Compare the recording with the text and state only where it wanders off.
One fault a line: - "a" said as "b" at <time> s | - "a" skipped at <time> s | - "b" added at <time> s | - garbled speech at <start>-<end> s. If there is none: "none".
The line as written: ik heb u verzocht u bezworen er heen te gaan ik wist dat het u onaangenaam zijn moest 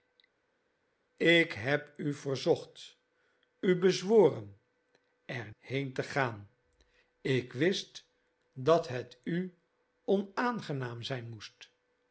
none